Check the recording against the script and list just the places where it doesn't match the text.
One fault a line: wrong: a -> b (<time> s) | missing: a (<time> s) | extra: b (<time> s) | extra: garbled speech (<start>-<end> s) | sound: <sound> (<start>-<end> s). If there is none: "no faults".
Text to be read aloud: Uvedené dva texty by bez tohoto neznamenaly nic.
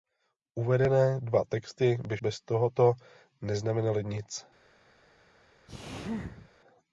sound: sneeze (5.7-6.5 s)